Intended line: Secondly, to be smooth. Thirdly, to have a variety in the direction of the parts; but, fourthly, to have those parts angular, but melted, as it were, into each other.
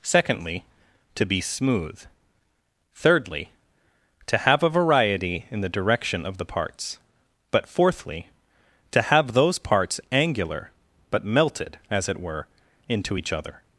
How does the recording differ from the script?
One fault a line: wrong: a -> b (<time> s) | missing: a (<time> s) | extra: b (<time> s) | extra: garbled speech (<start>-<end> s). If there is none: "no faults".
no faults